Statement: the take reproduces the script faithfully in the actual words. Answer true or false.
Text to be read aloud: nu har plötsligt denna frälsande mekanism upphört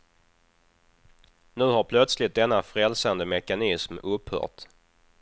true